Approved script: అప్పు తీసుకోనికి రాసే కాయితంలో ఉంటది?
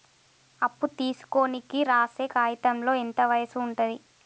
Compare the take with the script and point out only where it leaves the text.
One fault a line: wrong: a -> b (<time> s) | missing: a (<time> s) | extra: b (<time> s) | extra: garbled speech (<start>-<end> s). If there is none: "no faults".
extra: ఎంత వయసు (2.9 s)